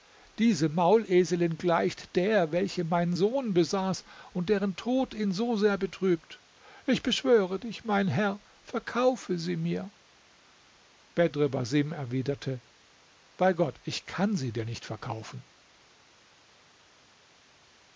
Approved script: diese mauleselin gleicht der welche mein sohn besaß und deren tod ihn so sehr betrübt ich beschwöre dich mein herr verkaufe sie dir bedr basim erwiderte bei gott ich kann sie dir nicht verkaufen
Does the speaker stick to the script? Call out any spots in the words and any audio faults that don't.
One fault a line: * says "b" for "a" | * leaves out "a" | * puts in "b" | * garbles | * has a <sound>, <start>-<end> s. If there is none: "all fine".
* says "mir" for "dir"